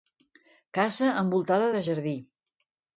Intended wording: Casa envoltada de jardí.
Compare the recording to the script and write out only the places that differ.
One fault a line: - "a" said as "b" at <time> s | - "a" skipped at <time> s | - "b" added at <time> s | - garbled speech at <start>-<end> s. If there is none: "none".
none